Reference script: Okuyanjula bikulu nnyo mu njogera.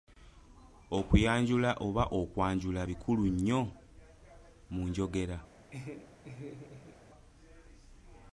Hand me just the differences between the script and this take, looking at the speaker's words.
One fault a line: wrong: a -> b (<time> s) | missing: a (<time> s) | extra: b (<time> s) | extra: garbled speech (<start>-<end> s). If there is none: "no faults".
extra: oba okwanjula (1.9 s)